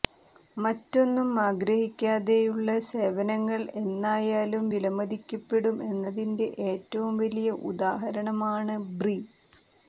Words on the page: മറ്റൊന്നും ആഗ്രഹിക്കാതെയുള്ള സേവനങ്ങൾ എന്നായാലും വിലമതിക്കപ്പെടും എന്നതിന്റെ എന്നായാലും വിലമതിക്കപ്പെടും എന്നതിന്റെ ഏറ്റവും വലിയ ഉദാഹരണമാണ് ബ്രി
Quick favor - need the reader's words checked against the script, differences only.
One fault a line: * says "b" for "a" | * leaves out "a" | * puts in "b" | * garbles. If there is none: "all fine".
* leaves out "എന്നായാലും വിലമതിക്കപ്പെടും എന്നതിന്റെ"